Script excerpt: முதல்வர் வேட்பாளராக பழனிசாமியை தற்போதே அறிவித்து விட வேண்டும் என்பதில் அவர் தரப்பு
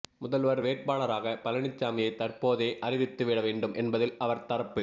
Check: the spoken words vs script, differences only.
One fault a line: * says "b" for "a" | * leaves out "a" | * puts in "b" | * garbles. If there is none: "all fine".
all fine